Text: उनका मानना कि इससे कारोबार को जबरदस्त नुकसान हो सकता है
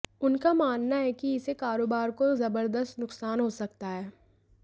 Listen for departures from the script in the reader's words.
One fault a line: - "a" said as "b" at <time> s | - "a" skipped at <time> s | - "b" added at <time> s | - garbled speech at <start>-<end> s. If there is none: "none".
- "है" added at 0.9 s